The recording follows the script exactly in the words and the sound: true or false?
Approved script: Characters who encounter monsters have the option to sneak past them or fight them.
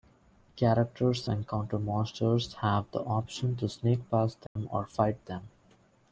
false